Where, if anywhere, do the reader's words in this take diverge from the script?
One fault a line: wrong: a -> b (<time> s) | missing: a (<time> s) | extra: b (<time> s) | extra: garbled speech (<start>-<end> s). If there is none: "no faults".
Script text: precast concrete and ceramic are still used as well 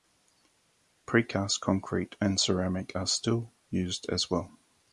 no faults